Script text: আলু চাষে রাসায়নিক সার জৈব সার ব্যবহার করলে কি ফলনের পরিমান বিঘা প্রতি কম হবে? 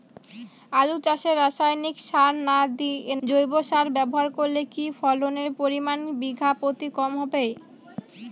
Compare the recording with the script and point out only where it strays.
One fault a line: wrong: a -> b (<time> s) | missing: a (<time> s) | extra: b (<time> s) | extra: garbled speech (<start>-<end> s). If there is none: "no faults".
no faults